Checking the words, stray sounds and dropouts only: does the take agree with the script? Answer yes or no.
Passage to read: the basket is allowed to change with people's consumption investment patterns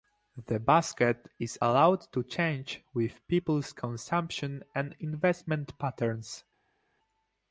no